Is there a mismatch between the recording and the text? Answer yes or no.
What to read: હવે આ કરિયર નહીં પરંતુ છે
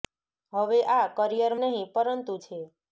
no